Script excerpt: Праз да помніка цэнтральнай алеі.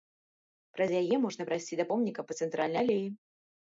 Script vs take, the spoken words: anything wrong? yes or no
yes